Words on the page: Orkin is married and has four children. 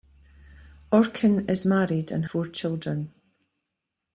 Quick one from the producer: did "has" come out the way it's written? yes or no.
no